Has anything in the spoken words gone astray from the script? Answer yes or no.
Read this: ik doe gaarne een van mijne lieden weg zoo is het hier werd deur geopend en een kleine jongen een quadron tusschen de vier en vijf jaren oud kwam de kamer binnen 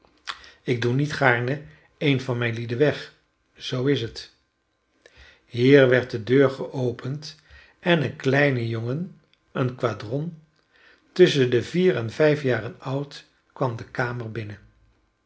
yes